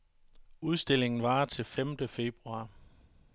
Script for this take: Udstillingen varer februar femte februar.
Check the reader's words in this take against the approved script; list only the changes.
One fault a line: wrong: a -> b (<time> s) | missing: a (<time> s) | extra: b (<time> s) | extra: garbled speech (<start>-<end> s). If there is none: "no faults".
wrong: februar -> til (1.4 s)